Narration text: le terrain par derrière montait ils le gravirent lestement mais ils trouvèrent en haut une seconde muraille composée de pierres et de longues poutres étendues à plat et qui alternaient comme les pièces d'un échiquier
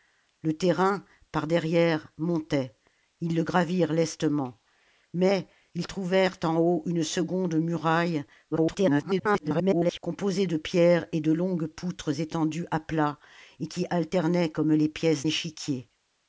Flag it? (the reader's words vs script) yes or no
yes